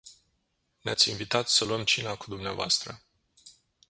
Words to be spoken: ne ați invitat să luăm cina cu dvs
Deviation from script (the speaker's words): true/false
false